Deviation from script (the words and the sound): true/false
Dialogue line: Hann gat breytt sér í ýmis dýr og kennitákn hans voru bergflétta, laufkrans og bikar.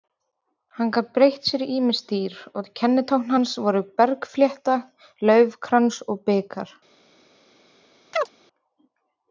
true